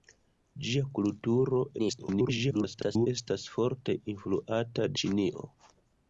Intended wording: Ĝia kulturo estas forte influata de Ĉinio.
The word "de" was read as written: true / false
false